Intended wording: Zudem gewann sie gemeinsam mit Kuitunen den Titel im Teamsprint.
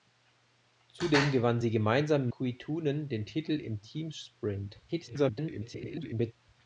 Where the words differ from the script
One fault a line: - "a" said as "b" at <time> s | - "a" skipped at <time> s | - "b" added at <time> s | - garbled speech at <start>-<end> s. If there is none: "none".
- "mit" skipped at 2.3 s
- garbled speech at 4.9-6.3 s